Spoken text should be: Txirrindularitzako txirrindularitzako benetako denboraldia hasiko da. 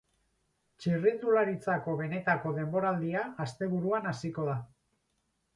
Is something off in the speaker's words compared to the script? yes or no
yes